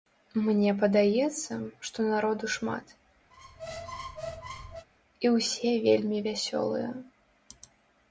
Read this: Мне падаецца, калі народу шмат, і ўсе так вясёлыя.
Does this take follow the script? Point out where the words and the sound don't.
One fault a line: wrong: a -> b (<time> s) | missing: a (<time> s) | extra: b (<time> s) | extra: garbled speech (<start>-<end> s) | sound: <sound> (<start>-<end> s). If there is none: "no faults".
wrong: калі -> што (1.9 s)
sound: squeak (3.3-4.9 s)
wrong: так -> вельмі (5.9 s)